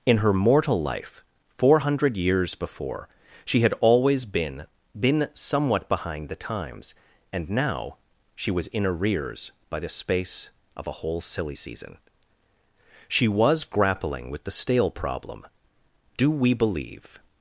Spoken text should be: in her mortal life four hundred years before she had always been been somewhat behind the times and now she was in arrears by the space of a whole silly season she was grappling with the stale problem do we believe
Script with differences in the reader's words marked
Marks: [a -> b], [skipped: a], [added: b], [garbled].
in her mortal life four hundred years before she had always been been somewhat behind the times and now she was in arrears by the space of a whole silly season she was grappling with the stale problem do we believe